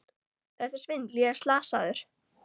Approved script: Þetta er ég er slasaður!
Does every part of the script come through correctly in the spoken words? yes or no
no